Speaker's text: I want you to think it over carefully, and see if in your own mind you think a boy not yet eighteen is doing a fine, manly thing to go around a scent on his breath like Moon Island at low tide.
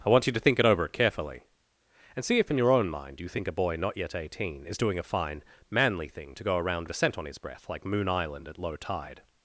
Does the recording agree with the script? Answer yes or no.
yes